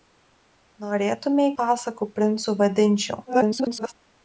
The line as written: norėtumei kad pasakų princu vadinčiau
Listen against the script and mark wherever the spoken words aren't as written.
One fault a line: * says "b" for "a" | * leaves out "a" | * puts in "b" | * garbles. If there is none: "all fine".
* leaves out "kad"
* garbles